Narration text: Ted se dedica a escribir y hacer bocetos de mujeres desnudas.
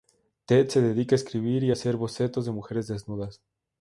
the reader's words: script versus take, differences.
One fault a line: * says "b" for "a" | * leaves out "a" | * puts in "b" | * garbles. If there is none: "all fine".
all fine